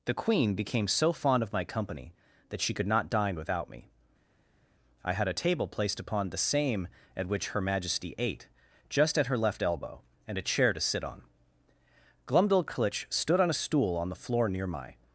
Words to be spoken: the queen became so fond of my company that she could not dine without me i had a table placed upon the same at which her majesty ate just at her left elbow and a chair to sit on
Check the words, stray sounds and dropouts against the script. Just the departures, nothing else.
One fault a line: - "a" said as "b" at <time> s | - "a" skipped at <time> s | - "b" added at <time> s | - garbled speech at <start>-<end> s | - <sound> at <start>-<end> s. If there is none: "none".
- "glumdalclitch stood on a stool on the floor near my" added at 12.3 s